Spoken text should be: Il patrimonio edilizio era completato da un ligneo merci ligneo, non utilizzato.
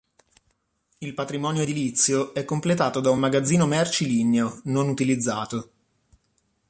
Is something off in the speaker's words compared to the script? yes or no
yes